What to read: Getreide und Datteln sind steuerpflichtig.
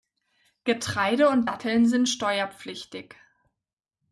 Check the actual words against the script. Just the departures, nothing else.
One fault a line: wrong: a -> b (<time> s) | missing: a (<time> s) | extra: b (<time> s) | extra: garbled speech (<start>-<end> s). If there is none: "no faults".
no faults